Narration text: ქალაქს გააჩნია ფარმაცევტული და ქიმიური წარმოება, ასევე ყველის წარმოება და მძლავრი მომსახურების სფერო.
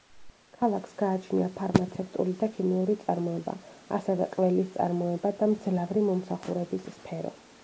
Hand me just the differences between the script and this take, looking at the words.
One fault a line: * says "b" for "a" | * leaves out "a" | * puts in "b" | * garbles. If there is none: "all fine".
all fine